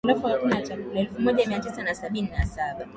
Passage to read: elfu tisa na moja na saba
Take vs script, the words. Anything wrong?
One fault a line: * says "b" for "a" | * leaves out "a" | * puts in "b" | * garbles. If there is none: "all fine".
* puts in "moja mia"
* says "sabini" for "moja"